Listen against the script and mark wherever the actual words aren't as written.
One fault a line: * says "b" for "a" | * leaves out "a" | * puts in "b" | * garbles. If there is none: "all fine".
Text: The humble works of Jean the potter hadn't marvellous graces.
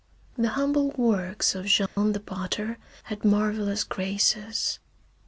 * says "had" for "hadn't"